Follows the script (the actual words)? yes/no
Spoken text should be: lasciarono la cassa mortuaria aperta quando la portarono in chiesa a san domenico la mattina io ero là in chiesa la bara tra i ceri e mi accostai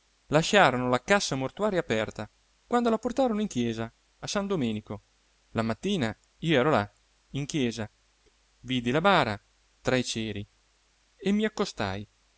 no